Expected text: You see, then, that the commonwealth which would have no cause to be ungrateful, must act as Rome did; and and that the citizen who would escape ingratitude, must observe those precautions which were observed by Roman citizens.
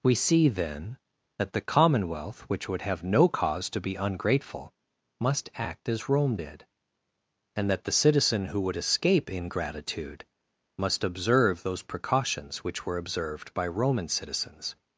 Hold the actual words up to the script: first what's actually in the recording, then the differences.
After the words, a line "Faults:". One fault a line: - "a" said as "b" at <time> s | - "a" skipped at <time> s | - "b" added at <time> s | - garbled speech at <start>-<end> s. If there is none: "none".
We see, then, that the commonwealth which would have no cause to be ungrateful, must act as Rome did; and that the citizen who would escape ingratitude, must observe those precautions which were observed by Roman citizens.
Faults:
- "You" said as "We" at 0.0 s
- "and" skipped at 7.7 s